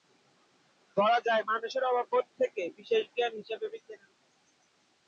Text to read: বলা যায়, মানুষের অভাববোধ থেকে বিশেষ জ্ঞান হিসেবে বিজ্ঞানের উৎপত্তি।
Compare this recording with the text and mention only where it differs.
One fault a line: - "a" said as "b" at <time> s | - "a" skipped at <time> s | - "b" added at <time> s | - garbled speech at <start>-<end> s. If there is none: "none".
none